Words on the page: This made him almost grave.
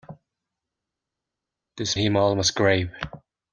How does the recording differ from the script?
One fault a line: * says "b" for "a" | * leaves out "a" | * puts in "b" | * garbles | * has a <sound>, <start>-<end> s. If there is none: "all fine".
* leaves out "made"